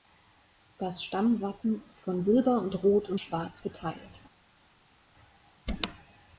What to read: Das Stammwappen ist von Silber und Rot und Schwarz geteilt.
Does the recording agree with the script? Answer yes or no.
yes